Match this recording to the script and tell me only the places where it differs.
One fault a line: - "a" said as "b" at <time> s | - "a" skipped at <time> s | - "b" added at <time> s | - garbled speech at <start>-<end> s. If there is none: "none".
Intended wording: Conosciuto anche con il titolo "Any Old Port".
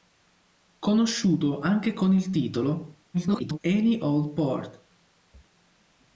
- garbled speech at 3.1-3.6 s